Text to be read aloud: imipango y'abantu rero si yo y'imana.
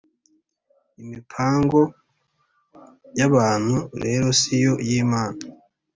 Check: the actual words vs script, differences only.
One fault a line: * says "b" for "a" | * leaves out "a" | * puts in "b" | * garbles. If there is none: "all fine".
all fine